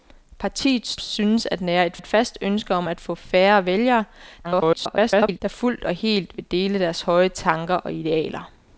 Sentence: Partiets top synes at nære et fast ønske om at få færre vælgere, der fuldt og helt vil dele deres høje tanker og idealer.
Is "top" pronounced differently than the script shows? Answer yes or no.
yes